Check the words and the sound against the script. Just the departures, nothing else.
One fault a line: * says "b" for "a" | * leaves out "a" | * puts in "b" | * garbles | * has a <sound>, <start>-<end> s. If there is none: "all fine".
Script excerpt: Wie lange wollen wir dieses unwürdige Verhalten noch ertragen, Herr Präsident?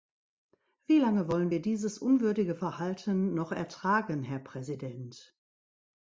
all fine